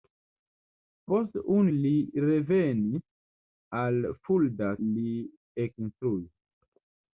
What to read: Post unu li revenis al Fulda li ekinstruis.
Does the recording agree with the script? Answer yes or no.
yes